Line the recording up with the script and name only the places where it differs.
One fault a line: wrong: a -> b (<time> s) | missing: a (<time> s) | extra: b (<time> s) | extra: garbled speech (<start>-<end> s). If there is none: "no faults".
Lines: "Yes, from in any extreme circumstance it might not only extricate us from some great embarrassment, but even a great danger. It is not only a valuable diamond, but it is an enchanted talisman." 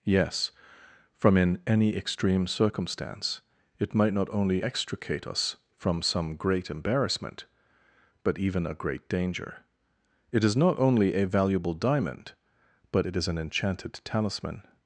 no faults